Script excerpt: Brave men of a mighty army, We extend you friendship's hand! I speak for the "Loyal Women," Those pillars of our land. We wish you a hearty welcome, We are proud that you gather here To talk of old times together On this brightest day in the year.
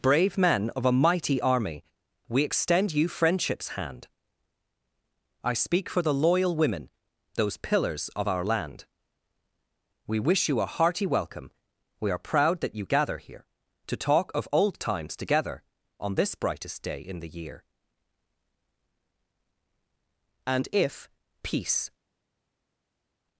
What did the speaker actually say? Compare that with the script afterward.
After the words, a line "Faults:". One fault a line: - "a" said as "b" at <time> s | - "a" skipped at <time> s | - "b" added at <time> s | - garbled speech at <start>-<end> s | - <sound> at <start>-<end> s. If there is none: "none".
Brave men of a mighty army, We extend you friendship's hand! I speak for the "Loyal Women," Those pillars of our land. We wish you a hearty welcome, We are proud that you gather here To talk of old times together On this brightest day in the year. And if Peace
Faults:
- "And if Peace" added at 20.5 s